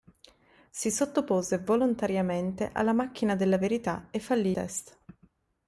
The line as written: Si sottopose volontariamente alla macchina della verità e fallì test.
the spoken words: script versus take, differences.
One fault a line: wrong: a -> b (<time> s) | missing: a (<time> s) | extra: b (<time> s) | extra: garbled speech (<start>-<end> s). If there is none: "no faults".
no faults